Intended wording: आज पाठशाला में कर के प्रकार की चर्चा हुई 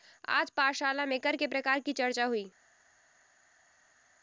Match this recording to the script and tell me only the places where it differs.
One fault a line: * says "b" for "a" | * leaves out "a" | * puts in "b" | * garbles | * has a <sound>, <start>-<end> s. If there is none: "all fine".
all fine